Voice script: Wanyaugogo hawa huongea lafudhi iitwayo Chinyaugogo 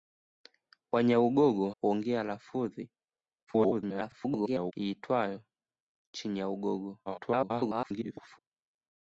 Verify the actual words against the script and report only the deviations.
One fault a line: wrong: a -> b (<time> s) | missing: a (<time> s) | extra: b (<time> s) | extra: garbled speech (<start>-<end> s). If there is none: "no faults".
missing: hawa (1.7 s)
extra: garbled speech (3.5-4.7 s)
extra: garbled speech (7.1-8.4 s)